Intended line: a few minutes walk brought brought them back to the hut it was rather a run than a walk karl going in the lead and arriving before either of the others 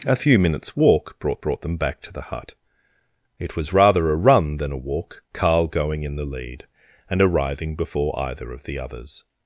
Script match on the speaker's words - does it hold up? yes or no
yes